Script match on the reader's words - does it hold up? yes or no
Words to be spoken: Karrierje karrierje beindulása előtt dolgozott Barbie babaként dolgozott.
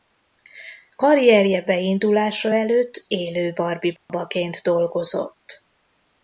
no